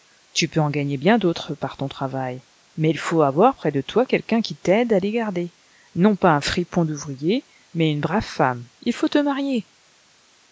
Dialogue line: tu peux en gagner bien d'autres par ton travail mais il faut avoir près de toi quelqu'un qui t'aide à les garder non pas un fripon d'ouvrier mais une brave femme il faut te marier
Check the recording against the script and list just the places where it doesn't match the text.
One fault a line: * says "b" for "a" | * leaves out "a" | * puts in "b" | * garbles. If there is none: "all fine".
all fine